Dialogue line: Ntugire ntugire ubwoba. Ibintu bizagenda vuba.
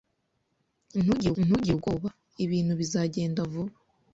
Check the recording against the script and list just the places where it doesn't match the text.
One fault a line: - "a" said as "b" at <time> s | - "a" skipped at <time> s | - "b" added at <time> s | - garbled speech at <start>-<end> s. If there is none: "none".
none